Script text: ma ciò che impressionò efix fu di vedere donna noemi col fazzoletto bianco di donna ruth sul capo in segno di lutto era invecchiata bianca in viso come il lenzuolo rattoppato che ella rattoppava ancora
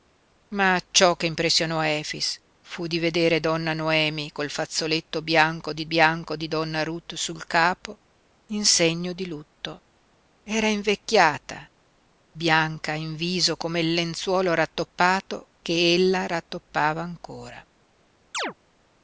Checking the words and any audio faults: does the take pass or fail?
fail